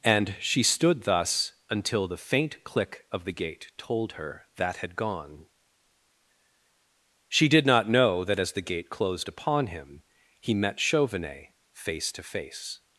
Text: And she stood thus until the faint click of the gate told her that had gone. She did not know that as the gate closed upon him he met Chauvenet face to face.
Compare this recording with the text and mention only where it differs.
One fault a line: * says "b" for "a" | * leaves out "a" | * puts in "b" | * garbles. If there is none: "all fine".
all fine